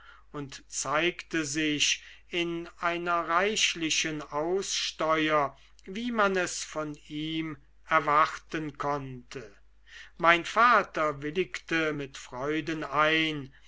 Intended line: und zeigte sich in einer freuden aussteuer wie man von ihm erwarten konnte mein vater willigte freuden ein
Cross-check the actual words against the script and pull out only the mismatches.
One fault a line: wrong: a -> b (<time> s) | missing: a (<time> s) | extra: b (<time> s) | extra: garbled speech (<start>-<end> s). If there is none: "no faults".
wrong: freuden -> reichlichen (3.3 s)
extra: es (6.4 s)
extra: mit (11.9 s)